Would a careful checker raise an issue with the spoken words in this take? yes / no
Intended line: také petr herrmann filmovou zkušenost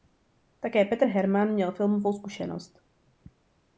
yes